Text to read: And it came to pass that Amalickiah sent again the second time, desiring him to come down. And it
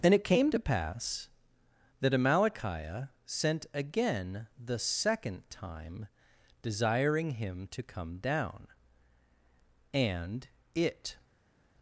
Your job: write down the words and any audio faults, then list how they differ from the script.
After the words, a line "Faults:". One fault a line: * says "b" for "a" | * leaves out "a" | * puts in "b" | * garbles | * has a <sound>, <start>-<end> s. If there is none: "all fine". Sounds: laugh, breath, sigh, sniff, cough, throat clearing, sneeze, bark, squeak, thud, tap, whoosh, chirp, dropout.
And it came to pass that Amalickiah sent again the second time, desiring him to come down. And it
Faults:
all fine